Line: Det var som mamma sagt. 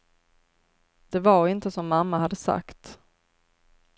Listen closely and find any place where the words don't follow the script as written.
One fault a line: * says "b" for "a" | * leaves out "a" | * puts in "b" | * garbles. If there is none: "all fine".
* puts in "inte"
* puts in "hade"